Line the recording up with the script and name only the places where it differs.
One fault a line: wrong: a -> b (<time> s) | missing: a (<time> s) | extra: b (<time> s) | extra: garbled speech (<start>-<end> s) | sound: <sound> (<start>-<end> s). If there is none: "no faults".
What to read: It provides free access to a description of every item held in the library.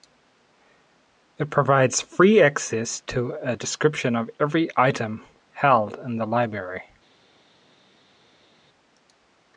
no faults